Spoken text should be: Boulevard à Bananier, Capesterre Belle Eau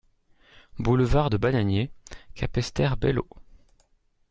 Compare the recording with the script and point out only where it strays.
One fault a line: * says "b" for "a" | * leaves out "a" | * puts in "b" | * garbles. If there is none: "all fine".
* says "de" for "à"